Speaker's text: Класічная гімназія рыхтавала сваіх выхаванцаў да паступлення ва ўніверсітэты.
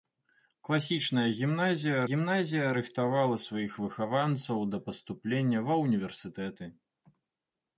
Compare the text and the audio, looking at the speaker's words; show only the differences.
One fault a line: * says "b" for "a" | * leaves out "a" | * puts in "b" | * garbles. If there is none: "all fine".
* puts in "гімназія"